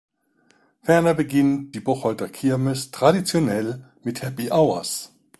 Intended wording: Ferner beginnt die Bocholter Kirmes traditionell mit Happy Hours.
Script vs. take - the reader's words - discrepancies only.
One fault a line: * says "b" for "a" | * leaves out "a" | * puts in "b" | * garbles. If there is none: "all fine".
all fine